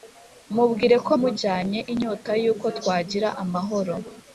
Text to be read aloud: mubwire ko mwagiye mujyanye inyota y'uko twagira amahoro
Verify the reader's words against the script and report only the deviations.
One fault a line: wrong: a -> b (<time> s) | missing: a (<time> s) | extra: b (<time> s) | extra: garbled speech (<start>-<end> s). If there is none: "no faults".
missing: mwagiye (1.1 s)